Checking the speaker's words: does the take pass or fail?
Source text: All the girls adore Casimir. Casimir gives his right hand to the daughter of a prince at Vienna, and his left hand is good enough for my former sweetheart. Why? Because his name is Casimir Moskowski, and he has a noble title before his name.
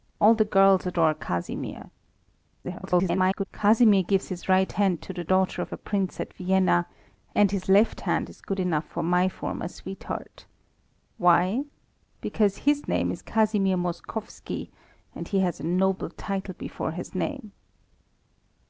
fail